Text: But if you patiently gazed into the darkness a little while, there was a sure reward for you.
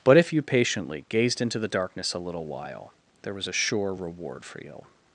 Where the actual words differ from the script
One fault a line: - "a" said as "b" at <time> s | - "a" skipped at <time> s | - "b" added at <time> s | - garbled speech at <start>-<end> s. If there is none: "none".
none